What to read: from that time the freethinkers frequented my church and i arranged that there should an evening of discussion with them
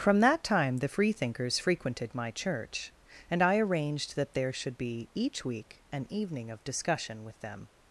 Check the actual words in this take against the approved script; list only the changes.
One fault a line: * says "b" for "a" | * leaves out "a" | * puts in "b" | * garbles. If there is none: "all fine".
* puts in "be each week"